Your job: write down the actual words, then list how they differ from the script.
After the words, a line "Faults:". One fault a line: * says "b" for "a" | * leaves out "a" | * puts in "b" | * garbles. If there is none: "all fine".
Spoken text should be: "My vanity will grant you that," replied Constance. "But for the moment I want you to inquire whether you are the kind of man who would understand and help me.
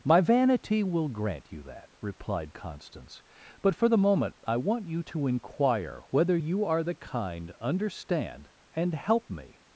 "My vanity will grant you that," replied Constance. "But for the moment I want you to inquire whether you are the kind understand and help me.
Faults:
* leaves out "of man who would"